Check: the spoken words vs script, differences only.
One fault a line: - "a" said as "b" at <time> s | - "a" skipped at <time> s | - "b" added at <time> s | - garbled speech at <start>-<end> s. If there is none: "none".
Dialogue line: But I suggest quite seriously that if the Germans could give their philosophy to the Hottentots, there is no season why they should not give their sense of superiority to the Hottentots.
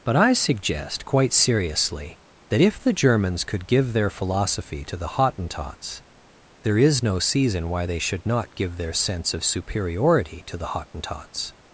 none